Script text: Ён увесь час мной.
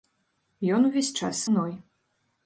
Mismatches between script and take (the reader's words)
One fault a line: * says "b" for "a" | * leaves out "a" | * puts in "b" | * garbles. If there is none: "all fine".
all fine